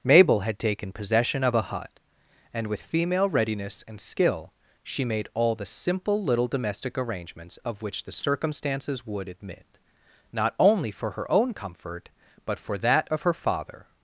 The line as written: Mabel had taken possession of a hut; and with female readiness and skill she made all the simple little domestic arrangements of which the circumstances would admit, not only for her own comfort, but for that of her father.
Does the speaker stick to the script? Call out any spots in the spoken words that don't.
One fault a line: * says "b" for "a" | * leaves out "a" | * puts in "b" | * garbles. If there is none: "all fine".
all fine